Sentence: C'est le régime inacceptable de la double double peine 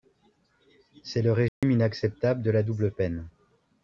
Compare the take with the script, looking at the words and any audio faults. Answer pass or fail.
fail